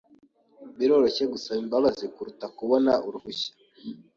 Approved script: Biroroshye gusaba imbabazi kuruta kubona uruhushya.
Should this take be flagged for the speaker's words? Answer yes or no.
no